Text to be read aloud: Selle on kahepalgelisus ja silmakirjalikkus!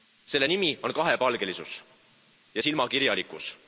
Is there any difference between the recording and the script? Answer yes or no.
yes